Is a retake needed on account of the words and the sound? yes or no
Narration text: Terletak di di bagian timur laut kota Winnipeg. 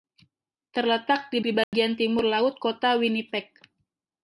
yes